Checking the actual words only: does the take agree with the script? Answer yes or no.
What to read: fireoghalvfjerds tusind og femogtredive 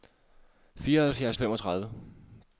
no